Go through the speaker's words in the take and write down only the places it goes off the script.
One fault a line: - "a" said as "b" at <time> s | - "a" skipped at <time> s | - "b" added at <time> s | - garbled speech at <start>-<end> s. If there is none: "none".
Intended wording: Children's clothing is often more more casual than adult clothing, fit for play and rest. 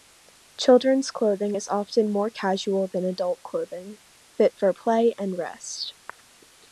- "more" skipped at 2.3 s